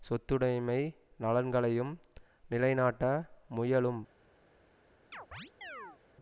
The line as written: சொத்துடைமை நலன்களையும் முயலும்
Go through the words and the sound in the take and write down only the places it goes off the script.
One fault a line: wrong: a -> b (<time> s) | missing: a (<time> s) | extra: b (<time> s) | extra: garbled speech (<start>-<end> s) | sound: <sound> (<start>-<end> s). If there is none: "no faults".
extra: நிலைநாட்ட (2.5 s)
sound: chirp (5.1-6.0 s)